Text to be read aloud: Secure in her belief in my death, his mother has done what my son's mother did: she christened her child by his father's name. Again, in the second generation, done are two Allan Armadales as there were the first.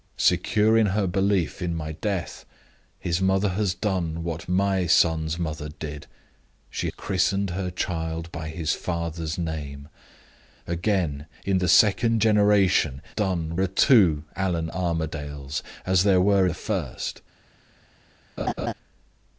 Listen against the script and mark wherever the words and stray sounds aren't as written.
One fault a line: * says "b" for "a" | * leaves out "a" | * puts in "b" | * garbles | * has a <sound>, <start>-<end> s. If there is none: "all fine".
* has a laugh, 18.4-18.7 s